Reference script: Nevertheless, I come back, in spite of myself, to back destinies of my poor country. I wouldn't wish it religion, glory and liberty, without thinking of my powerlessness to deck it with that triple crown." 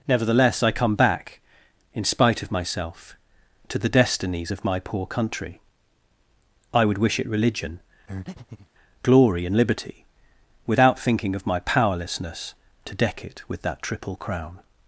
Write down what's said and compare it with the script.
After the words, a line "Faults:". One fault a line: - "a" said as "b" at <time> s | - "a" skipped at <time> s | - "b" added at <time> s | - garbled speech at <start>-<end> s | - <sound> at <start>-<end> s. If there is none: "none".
Nevertheless, I come back, in spite of myself, to the destinies of my poor country. I would wish it religion, glory and liberty, without thinking of my powerlessness to deck it with that triple crown."
Faults:
- "back" said as "the" at 3.8 s
- "wouldn't" said as "would" at 6.9 s
- breath at 8.1-8.7 s